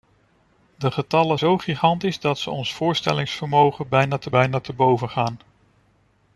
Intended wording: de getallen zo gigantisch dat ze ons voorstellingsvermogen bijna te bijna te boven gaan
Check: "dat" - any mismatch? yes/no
no